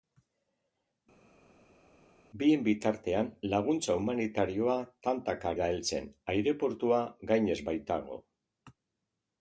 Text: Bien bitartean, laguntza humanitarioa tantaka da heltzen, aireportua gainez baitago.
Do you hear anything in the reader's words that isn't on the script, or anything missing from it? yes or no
no